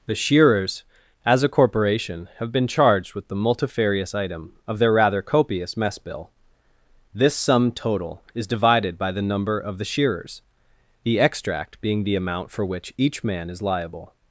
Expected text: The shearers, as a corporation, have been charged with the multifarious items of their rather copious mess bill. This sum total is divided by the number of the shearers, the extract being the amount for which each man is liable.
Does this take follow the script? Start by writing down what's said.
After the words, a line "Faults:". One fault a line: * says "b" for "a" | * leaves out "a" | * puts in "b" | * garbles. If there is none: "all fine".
The shearers, as a corporation, have been charged with the multifarious item of their rather copious mess bill. This sum total is divided by the number of the shearers, the extract being the amount for which each man is liable.
Faults:
* says "item" for "items"